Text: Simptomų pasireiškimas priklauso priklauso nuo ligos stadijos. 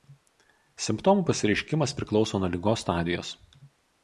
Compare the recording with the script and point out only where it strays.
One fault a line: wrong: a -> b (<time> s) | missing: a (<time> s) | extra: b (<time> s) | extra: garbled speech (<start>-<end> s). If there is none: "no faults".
missing: priklauso (2.4 s)